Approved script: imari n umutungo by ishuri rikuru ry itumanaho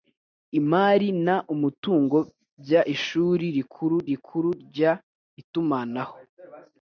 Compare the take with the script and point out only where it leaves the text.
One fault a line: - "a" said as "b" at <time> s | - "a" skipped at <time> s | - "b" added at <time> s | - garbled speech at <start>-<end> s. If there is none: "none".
- "rikuru" added at 4.1 s